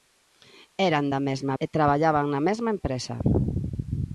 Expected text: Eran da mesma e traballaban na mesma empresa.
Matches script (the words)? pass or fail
pass